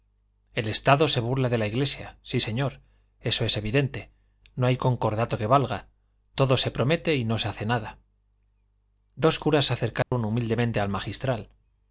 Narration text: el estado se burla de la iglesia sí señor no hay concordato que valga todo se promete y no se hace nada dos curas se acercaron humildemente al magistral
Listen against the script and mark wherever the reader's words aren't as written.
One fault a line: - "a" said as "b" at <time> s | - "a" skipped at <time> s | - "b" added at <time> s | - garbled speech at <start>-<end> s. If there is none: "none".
- "eso es evidente" added at 3.2 s